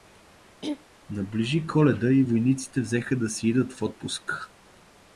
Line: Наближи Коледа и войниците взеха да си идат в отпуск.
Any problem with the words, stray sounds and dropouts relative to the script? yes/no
yes